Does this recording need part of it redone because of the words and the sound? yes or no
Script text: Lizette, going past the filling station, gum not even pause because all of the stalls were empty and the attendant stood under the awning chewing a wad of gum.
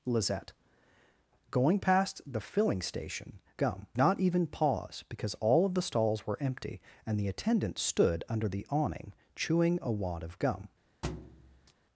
yes